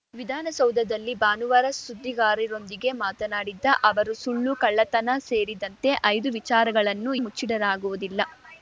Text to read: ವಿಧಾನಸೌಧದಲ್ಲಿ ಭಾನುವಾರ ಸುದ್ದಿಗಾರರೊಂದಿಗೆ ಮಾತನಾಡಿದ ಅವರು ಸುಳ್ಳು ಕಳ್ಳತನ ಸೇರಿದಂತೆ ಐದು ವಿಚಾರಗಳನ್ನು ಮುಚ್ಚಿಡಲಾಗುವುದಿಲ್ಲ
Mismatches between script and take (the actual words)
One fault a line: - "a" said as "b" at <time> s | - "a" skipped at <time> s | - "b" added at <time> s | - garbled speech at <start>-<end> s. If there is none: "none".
none